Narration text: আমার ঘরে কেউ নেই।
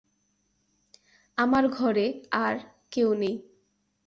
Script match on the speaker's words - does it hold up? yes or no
no